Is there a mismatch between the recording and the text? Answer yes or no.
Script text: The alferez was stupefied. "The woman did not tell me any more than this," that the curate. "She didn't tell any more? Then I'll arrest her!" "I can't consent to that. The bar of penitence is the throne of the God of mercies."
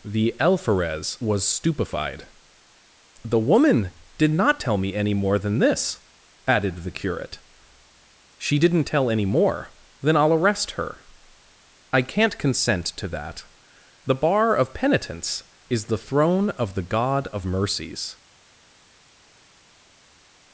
yes